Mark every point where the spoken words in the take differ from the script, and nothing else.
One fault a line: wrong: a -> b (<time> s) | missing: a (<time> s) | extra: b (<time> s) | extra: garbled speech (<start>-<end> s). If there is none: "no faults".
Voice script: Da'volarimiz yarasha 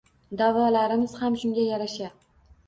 extra: ham shunga (1.2 s)